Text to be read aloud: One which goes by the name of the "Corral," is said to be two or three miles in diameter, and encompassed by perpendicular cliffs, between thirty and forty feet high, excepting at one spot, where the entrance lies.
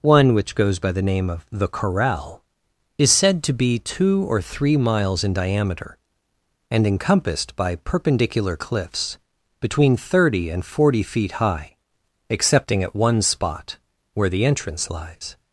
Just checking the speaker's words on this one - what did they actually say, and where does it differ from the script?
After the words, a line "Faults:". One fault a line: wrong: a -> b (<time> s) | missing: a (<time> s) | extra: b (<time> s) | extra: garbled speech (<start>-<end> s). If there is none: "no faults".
One which goes by the name of the "Corral," is said to be two or three miles in diameter, and encompassed by perpendicular cliffs, between thirty and forty feet high, excepting at one spot, where the entrance lies.
Faults:
no faults